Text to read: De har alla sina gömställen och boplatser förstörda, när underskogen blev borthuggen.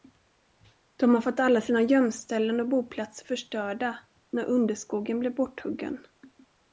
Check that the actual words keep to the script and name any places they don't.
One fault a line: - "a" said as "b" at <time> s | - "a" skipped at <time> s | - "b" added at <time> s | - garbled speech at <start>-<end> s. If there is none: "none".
- "fått" added at 1.2 s